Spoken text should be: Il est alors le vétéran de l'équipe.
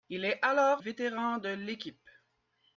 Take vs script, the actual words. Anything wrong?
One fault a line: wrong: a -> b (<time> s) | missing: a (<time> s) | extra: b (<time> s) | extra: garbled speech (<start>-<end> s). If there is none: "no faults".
missing: le (0.8 s)